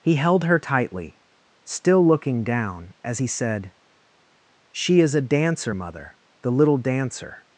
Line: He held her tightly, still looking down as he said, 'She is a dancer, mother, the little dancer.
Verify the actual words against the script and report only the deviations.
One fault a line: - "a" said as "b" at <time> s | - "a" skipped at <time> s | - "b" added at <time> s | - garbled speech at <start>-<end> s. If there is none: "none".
none